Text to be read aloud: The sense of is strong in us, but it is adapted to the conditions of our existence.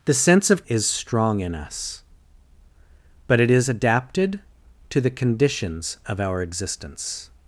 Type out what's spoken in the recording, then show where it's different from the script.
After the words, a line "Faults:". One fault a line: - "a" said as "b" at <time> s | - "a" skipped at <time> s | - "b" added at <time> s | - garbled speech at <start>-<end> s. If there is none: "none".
The sense of is strong in us, but it is adapted to the conditions of our existence.
Faults:
none